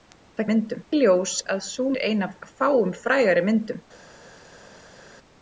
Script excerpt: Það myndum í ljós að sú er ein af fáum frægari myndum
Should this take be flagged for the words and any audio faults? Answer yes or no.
no